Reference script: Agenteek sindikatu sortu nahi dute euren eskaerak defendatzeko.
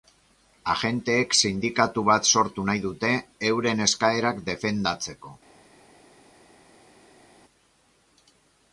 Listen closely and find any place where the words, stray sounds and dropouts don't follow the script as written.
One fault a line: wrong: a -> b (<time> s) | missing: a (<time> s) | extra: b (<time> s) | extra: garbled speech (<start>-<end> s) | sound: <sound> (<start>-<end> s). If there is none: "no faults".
extra: bat (2.1 s)